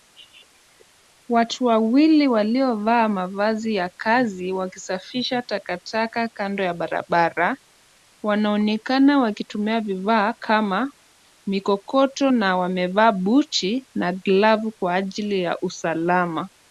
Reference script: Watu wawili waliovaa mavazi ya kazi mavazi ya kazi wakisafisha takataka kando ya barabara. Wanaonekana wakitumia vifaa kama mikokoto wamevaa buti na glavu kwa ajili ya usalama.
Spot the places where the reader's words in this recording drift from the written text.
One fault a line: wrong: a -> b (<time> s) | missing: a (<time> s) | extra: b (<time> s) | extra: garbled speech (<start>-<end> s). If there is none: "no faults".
missing: mavazi ya kazi (4.5 s)
extra: na (12.3 s)